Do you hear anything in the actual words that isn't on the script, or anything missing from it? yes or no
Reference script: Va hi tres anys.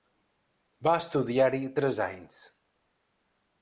yes